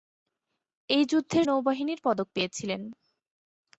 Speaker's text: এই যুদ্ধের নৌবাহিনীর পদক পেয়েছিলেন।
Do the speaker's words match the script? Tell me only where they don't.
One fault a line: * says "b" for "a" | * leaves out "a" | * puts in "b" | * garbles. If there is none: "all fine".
all fine